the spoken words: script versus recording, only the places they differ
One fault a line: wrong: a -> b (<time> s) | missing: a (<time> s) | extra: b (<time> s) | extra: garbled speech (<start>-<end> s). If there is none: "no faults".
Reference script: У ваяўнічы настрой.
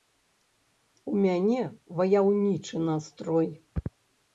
extra: мяне (1.3 s)